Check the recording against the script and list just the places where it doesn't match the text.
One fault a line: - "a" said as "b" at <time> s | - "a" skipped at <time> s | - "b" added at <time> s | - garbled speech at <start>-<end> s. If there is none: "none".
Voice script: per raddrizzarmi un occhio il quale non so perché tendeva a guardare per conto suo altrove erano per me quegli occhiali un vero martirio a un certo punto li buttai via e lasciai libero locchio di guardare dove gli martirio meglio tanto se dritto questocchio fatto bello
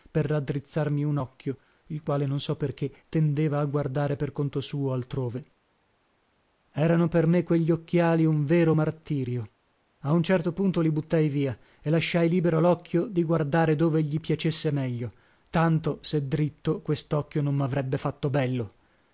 - "martirio" said as "piacesse" at 14.2 s
- "non mavrebbe" added at 17.4 s